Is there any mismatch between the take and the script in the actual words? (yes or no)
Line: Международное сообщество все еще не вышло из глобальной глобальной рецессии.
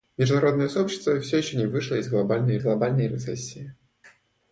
no